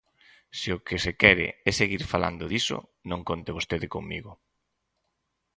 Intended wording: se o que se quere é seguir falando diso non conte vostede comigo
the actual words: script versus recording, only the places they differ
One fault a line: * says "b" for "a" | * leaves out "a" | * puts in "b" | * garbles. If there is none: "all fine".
all fine